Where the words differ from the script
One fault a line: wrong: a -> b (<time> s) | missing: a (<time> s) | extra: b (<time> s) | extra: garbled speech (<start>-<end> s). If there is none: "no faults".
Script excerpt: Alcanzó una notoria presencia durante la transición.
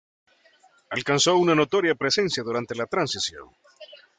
no faults